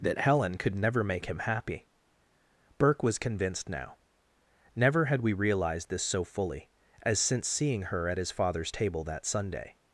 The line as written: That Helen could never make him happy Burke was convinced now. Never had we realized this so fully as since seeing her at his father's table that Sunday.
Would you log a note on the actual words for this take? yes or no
no